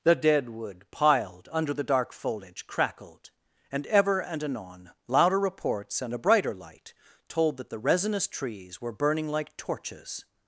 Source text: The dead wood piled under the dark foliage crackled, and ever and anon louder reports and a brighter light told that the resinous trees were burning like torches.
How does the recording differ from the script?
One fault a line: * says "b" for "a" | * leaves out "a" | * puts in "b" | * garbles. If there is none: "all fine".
all fine